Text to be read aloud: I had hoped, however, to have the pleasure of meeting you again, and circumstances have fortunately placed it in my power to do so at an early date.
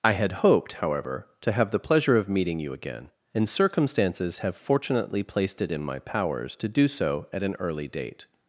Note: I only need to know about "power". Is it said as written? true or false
false